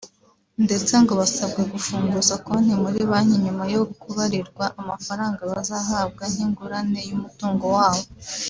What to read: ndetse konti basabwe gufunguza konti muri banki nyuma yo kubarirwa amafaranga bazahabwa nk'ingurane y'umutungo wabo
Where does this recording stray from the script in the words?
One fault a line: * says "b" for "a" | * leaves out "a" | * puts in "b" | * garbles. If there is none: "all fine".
* says "ngo" for "konti"